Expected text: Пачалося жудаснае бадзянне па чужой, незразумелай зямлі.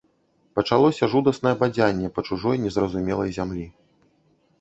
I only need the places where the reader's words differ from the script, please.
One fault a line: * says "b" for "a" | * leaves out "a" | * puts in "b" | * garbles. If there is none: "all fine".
all fine